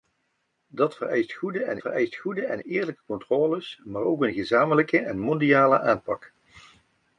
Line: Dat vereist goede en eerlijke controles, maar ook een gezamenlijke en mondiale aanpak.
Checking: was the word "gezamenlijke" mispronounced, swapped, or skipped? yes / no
no